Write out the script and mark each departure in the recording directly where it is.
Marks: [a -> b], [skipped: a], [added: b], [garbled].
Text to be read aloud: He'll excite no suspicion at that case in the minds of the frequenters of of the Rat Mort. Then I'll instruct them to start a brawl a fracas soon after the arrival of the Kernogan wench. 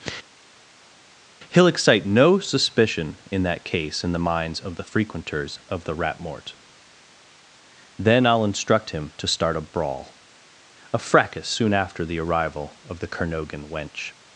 He'll excite no suspicion [at -> in] that case in the minds of the frequenters of [skipped: of] the Rat Mort. Then I'll instruct [them -> him] to start a brawl a fracas soon after the arrival of the Kernogan wench.